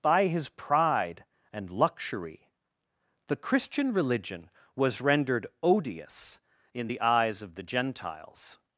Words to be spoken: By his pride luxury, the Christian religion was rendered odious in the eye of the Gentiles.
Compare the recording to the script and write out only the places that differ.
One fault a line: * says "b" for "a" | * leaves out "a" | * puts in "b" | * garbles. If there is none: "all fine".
* puts in "and"
* says "eyes" for "eye"